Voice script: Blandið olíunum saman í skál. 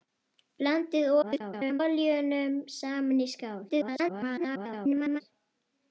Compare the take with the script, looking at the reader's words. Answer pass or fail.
fail